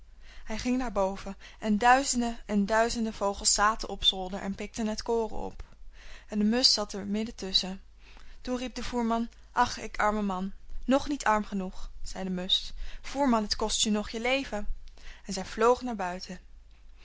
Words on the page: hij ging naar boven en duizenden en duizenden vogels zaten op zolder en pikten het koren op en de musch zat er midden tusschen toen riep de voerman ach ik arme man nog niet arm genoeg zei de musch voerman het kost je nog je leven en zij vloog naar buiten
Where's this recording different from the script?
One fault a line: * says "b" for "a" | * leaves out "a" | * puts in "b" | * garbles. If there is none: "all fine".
all fine